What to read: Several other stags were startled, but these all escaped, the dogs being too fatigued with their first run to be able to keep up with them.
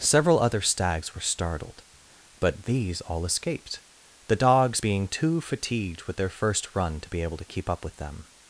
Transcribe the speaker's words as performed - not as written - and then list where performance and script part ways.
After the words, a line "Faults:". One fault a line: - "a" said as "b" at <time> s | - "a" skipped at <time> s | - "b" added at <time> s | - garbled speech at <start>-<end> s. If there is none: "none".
Several other stags were startled, but these all escaped, the dogs being too fatigued with their first run to be able to keep up with them.
Faults:
none